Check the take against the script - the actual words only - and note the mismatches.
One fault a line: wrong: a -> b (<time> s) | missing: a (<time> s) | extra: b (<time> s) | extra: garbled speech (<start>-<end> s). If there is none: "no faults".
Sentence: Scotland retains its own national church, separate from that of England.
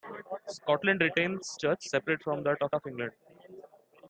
missing: its own national (1.6 s)
extra: of (2.7 s)